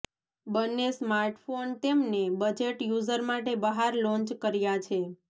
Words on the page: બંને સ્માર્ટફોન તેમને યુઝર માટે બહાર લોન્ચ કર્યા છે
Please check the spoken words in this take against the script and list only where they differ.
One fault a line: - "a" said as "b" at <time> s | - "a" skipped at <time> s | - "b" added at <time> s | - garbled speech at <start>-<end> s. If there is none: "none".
- "બજેટ" added at 2.4 s